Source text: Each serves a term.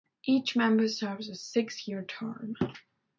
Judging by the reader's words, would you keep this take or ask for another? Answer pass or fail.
fail